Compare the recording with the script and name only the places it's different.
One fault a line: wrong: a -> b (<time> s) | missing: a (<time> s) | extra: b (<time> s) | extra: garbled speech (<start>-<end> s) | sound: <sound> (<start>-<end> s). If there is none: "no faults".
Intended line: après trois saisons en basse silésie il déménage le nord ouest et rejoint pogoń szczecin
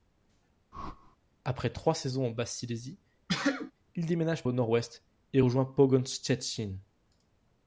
sound: whoosh (0.7-1.2 s)
sound: sneeze (3.3-3.7 s)